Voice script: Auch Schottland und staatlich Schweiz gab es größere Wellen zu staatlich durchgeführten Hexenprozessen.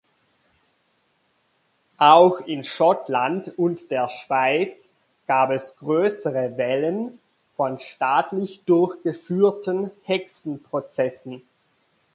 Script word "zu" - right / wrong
wrong